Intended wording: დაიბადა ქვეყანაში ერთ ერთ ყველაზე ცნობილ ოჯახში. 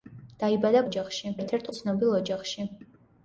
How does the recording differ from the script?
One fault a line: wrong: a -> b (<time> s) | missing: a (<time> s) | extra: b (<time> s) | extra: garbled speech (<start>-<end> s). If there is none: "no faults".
wrong: ქვეყანაში -> ოჯახში (0.9 s)
missing: ყველაზე (1.7 s)